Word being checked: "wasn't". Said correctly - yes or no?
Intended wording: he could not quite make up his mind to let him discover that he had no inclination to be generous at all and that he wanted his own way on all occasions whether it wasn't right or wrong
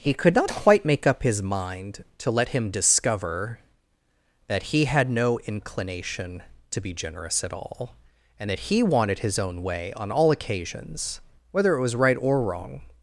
no